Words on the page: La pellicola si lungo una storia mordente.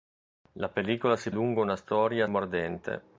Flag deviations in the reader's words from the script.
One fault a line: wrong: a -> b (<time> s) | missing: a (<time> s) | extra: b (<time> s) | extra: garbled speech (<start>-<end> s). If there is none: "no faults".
no faults